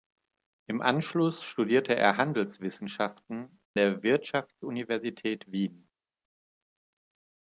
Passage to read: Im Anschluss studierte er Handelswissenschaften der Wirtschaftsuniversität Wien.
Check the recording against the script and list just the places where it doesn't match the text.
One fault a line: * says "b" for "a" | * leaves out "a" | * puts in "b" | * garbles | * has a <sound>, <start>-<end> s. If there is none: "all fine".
all fine